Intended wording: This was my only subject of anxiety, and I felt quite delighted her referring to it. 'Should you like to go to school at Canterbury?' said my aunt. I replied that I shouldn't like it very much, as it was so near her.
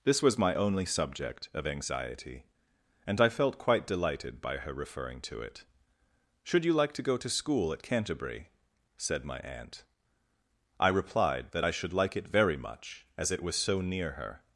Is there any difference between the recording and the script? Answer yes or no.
yes